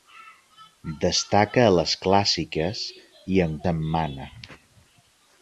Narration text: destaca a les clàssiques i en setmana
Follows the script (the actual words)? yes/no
yes